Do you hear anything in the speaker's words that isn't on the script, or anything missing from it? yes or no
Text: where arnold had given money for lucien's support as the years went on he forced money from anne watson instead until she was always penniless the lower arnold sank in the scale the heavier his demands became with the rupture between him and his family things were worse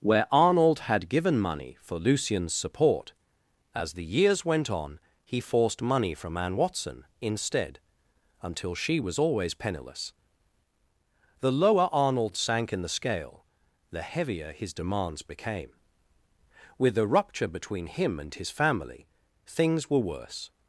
no